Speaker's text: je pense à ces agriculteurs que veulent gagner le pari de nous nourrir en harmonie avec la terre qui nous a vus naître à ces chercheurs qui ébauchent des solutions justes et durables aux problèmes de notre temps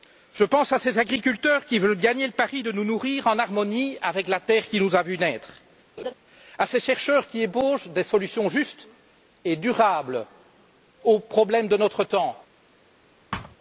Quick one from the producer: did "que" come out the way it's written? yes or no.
no